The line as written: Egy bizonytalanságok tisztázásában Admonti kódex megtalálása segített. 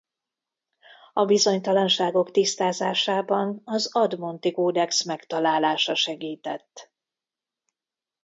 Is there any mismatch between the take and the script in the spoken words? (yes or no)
yes